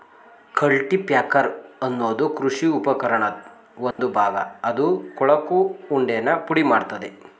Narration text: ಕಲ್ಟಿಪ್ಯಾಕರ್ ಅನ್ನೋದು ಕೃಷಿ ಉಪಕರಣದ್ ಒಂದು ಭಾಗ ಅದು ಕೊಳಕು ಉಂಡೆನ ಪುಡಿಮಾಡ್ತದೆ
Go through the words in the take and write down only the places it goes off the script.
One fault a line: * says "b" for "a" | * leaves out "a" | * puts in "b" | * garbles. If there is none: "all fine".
all fine